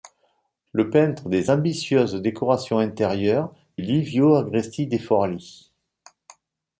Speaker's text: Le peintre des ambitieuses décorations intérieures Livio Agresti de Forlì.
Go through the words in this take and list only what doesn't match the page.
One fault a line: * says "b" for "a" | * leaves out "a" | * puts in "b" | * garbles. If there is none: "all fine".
all fine